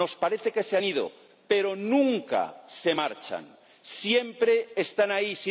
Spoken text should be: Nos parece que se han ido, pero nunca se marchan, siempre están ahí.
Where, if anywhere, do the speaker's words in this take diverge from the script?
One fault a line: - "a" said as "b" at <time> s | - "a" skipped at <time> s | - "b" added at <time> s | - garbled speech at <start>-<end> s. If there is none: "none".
none